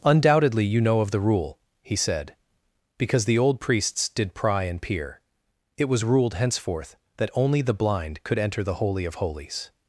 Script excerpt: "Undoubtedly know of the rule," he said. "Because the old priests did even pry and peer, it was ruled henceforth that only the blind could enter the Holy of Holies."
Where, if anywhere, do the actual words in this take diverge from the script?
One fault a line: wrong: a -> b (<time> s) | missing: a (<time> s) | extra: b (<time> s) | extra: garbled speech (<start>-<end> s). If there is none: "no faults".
extra: you (0.7 s)
missing: even (4.3 s)